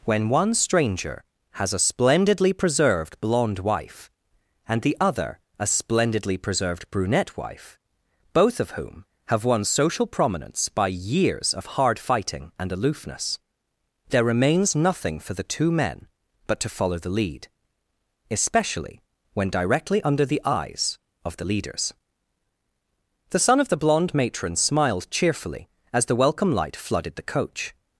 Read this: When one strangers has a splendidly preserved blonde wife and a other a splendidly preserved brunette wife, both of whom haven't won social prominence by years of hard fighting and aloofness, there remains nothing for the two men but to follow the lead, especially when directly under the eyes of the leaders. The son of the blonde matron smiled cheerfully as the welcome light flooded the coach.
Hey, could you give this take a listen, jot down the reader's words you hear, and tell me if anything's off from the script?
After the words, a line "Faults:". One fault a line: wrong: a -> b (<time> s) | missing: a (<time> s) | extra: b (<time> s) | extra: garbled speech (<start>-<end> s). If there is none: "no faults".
When one stranger has a splendidly preserved blonde wife and the other a splendidly preserved brunette wife, both of whom have won social prominence by years of hard fighting and aloofness, there remains nothing for the two men but to follow the lead, especially when directly under the eyes of the leaders. The son of the blonde matron smiled cheerfully as the welcome light flooded the coach.
Faults:
wrong: strangers -> stranger (0.6 s)
wrong: a -> the (4.8 s)
wrong: haven't -> have (9.3 s)